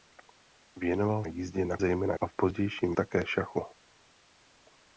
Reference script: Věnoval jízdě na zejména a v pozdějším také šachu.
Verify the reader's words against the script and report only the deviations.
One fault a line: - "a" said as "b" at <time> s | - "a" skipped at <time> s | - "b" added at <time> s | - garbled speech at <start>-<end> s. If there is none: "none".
none